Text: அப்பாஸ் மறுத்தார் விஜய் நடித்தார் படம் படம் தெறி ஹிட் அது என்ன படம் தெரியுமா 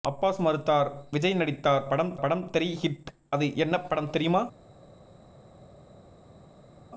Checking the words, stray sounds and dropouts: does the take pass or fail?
pass